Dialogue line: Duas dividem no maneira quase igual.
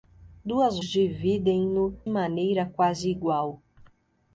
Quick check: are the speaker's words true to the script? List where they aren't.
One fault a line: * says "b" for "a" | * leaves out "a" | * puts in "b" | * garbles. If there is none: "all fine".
all fine